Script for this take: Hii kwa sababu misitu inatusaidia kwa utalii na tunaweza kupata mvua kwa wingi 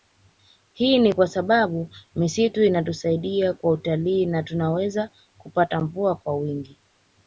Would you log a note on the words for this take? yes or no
yes